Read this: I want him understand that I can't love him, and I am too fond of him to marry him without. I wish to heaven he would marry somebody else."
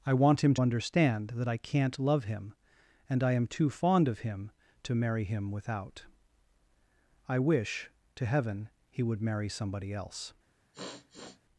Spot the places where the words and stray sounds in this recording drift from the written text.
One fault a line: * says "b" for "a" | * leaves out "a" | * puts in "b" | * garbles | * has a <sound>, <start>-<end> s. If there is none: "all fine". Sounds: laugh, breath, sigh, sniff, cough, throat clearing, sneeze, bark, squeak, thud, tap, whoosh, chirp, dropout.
* has a sniff, 10.7-11.4 s